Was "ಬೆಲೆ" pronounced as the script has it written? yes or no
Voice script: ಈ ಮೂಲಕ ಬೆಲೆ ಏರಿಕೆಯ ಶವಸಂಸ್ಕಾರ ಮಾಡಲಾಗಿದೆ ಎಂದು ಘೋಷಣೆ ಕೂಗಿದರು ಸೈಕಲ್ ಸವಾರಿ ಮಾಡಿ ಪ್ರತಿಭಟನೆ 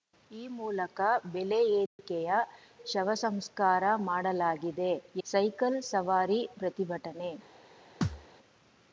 yes